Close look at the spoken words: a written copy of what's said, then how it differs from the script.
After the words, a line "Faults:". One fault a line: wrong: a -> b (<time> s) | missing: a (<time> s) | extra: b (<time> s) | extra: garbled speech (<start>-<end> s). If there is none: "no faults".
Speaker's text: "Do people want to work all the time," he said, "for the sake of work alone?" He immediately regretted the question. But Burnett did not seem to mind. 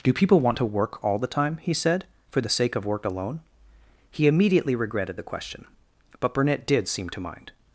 "Do people want to work all the time," he said, "for the sake of work alone?" He immediately regretted the question. But Burnett did seem to mind.
Faults:
missing: not (6.9 s)